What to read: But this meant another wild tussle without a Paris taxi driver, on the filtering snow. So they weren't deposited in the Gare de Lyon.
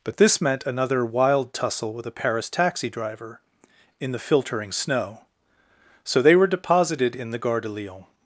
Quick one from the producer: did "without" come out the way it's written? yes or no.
no